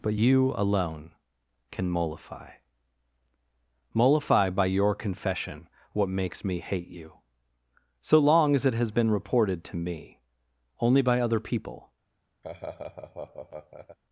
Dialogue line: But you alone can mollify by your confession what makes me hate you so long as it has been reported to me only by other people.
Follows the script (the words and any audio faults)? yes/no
no